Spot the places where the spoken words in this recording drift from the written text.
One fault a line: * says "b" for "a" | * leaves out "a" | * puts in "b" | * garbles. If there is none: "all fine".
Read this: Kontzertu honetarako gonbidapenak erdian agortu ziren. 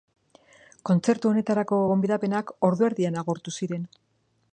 * puts in "ordu"